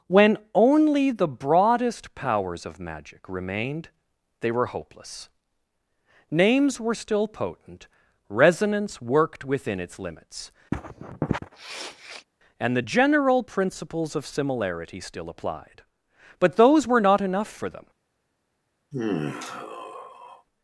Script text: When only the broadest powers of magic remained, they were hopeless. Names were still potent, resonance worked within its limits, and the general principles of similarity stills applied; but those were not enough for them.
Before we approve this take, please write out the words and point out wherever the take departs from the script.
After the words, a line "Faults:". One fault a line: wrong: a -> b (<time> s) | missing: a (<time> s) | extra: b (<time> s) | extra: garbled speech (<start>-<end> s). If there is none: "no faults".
When only the broadest powers of magic remained, they were hopeless. Names were still potent, resonance worked within its limits, and the general principles of similarity still applied; but those were not enough for them.
Faults:
wrong: stills -> still (15.0 s)